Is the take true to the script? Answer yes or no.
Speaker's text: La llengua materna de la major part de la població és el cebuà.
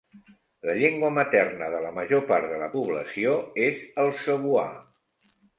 yes